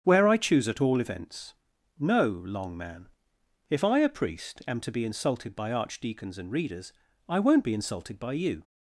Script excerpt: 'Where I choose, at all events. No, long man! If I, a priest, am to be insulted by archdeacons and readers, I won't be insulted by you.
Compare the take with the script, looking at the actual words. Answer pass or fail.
pass